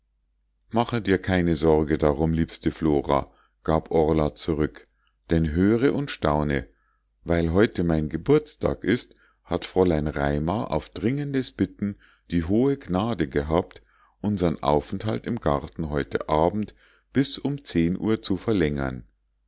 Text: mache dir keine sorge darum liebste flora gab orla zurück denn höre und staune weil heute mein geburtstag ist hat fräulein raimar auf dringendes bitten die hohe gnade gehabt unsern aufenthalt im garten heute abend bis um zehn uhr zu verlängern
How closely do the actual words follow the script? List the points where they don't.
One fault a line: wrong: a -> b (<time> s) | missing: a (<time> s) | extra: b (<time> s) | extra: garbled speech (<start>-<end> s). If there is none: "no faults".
no faults